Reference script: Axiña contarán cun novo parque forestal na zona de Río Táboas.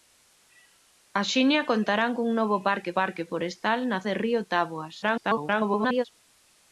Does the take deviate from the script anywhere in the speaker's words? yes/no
yes